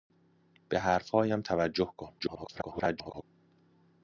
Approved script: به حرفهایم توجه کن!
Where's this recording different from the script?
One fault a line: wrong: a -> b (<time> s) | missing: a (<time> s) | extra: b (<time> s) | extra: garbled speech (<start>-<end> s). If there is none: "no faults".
extra: garbled speech (2.2-3.2 s)